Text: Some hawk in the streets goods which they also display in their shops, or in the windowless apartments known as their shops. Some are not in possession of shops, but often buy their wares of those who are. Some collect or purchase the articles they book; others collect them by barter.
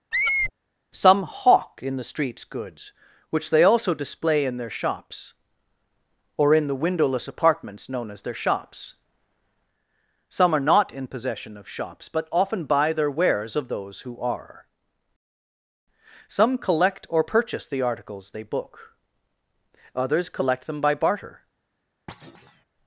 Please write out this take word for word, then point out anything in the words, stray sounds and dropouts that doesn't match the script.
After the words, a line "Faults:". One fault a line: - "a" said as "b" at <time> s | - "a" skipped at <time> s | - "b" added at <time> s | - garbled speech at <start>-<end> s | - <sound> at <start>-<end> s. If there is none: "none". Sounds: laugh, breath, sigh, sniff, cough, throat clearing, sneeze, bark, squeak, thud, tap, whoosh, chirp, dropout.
Some hawk in the streets goods which they also display in their shops, or in the windowless apartments known as their shops. Some are not in possession of shops, but often buy their wares of those who are. Some collect or purchase the articles they book; others collect them by barter.
Faults:
- squeak at 0.1-0.5 s
- thud at 22.1-22.6 s